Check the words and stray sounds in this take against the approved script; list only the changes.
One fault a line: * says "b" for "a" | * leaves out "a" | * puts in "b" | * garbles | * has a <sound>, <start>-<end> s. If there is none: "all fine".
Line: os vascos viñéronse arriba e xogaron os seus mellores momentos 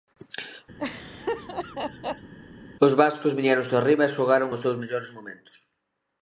* has a laugh, 0.8-2.3 s